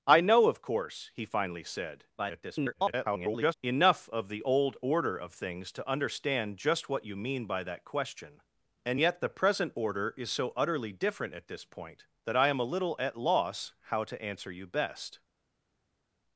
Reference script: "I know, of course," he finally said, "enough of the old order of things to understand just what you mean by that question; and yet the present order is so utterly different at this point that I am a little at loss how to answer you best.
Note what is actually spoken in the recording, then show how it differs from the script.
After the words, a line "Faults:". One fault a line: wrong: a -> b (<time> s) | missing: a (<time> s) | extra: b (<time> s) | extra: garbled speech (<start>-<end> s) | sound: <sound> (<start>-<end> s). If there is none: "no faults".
"I know, of course," he finally said, [garbled] "enough of the old order of things to understand just what you mean by that question; and yet the present order is so utterly different at this point that I am a little at loss how to answer you best.
Faults:
extra: garbled speech (2.2-3.5 s)